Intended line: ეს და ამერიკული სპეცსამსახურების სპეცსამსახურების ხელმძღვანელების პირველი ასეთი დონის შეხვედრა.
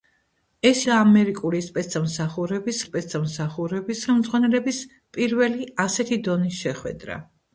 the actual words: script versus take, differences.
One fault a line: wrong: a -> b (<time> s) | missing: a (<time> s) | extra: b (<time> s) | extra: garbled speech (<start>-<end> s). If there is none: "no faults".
no faults